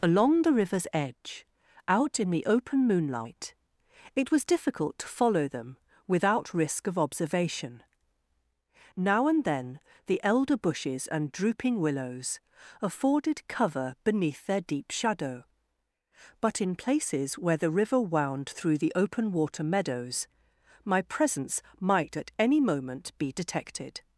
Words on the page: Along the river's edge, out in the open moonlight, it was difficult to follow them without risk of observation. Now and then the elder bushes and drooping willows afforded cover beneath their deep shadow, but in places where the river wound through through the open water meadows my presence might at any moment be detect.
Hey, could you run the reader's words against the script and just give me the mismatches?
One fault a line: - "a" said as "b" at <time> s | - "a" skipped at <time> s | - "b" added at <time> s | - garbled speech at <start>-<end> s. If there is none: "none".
- "through" skipped at 18.8 s
- "detect" said as "detected" at 23.3 s